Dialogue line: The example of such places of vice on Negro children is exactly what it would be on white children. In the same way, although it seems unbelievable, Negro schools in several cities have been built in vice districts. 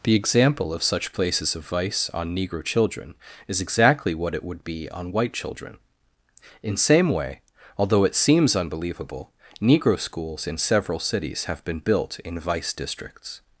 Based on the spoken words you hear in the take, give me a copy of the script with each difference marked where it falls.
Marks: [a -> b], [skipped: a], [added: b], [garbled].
The example of such places of vice on Negro children is exactly what it would be on white children. In [skipped: the] same way, although it seems unbelievable, Negro schools in several cities have been built in vice districts.